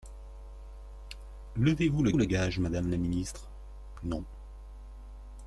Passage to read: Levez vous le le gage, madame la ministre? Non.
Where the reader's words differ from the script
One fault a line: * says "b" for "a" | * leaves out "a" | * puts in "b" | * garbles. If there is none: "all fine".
all fine